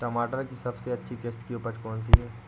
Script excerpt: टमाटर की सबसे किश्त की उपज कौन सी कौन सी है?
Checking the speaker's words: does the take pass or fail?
fail